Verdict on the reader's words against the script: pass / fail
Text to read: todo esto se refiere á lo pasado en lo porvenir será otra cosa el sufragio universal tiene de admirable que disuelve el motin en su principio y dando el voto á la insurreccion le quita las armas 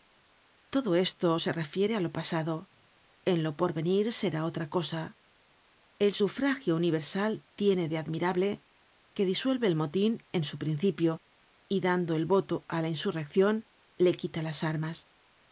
pass